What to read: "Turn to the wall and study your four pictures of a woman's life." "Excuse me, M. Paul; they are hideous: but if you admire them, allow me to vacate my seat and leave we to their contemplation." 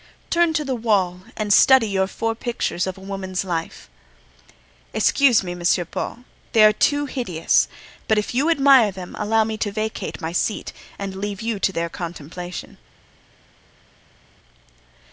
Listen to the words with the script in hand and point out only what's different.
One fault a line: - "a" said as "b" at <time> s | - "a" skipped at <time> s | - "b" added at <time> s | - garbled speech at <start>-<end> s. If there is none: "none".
- "too" added at 6.7 s
- "we" said as "you" at 11.4 s